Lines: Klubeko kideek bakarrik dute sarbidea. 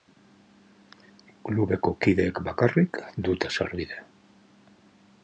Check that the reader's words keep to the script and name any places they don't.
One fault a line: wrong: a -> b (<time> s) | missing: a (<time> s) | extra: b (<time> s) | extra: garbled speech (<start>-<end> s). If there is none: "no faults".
no faults